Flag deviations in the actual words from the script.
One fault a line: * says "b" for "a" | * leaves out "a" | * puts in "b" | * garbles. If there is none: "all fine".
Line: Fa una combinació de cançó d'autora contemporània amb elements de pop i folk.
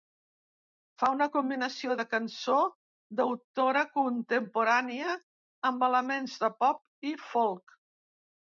all fine